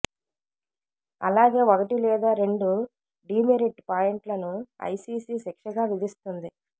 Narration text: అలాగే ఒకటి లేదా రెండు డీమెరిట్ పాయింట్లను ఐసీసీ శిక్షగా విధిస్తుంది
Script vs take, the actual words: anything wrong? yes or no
no